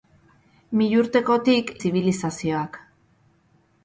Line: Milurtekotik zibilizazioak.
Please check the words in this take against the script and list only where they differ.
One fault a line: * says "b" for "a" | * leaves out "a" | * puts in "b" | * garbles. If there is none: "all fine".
all fine